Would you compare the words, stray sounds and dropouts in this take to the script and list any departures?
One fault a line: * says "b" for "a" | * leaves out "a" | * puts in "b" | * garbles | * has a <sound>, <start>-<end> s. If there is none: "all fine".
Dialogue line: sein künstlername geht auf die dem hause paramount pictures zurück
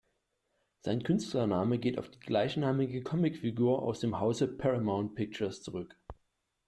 * puts in "gleichnamige comicfigur aus"